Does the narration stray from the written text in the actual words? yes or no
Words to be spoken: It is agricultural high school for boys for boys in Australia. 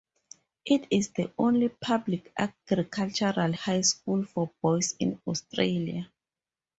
yes